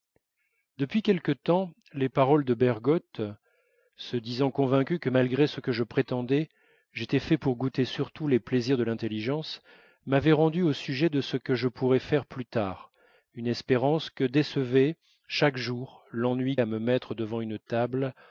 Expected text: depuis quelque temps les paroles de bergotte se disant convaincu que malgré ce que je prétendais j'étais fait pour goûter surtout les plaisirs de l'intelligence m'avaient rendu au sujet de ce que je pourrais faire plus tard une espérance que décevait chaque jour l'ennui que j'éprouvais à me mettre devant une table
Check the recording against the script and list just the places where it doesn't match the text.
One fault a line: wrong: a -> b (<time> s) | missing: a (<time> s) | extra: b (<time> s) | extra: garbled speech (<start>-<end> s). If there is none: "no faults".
missing: que j'éprouvais (16.6 s)